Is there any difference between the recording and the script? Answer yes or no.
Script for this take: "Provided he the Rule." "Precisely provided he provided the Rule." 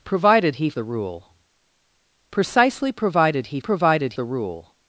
no